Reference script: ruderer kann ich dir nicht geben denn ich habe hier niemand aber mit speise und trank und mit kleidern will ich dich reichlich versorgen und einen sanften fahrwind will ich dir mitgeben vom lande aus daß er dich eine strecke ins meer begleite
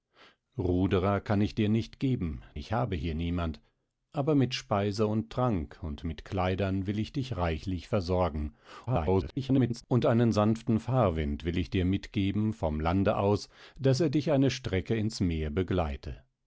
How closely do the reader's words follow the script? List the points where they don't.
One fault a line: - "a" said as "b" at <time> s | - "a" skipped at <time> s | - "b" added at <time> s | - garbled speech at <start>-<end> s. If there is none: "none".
- "denn" skipped at 2.4 s
- garbled speech at 8.9-9.8 s